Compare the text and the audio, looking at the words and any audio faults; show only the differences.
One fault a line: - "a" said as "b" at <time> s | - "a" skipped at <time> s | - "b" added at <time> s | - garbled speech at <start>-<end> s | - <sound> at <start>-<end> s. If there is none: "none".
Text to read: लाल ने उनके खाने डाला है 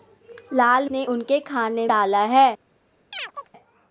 - chirp at 3.1-3.5 s